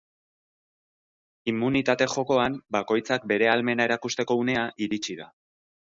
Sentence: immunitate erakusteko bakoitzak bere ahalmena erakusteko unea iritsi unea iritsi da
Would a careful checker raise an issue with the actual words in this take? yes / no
yes